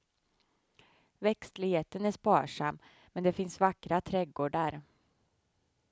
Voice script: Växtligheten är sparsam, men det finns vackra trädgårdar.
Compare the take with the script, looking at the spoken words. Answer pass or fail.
pass